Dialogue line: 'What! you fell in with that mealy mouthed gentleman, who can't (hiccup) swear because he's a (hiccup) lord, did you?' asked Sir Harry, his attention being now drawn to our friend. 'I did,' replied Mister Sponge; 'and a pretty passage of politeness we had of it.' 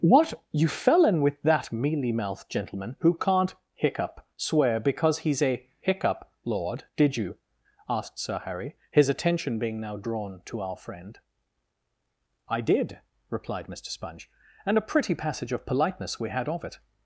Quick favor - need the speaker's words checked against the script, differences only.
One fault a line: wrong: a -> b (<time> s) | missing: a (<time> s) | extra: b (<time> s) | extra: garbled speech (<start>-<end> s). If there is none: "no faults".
no faults